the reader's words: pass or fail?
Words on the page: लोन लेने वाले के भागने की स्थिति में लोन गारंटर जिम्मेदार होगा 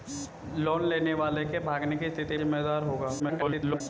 fail